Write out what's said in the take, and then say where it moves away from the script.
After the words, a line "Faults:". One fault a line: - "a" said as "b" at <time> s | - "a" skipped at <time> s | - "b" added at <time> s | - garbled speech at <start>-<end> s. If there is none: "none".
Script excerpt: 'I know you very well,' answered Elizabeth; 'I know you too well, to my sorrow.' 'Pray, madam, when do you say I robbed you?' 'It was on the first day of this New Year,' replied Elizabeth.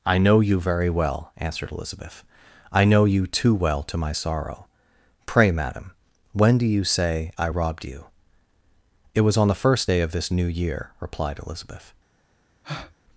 'I know you very well,' answered Elizabeth; 'I know you too well, to my sorrow.' 'Pray, madam, when do you say I robbed you?' 'It was on the first day of this New Year,' replied Elizabeth.
Faults:
none